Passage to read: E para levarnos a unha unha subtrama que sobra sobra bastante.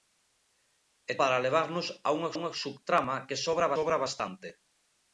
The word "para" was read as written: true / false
true